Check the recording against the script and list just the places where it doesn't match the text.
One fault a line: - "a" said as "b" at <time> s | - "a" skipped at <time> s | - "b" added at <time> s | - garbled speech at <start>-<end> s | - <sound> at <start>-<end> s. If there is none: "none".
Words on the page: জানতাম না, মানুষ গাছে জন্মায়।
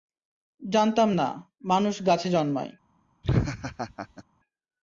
- laugh at 3.2-4.2 s